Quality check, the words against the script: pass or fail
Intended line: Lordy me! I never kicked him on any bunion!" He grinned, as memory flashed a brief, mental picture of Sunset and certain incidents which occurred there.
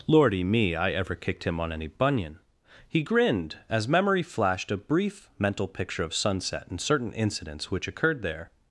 fail